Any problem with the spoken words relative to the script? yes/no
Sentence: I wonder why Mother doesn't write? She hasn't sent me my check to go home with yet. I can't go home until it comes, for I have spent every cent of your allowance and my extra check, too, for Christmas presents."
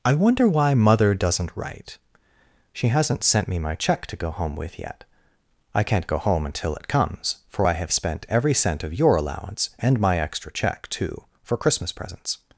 no